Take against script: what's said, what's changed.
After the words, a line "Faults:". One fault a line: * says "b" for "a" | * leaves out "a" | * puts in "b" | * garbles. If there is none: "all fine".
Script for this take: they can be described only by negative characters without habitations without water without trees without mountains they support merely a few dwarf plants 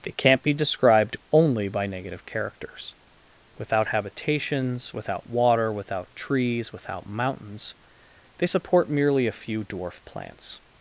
they can't be described only by negative characters without habitations without water without trees without mountains they support merely a few dwarf plants
Faults:
* says "can't" for "can"